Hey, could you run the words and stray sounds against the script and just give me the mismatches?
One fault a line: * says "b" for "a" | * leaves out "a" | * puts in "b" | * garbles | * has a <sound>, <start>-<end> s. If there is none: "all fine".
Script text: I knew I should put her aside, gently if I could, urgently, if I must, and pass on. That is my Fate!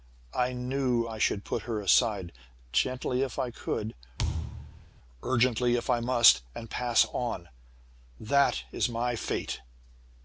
* has a thud, 4.2-4.9 s